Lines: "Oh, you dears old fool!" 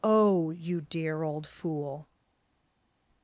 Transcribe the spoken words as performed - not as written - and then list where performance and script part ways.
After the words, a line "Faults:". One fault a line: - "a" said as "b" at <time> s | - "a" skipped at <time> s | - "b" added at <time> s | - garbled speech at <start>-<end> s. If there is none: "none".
"Oh, you dear old fool!"
Faults:
- "dears" said as "dear" at 0.8 s